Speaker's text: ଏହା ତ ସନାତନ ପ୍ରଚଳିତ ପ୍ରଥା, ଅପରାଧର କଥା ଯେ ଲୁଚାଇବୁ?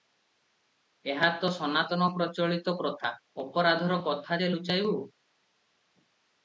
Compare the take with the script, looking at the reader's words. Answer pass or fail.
pass